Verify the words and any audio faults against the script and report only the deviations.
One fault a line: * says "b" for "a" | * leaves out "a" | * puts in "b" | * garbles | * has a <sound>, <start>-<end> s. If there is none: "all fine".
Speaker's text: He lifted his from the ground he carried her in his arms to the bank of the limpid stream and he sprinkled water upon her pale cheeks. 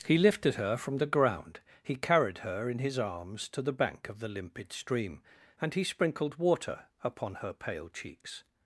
* says "her" for "his"